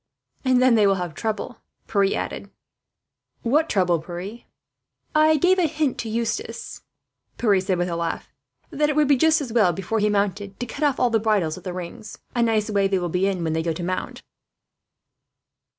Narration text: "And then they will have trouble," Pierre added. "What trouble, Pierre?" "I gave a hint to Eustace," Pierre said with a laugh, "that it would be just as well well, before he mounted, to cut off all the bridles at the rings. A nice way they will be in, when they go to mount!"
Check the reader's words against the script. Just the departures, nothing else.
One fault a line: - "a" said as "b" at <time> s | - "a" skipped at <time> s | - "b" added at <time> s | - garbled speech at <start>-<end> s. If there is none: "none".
- "well" skipped at 9.7 s